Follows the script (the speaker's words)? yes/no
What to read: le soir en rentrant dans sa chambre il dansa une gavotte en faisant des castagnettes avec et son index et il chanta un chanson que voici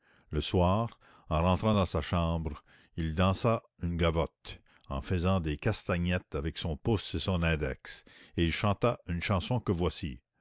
no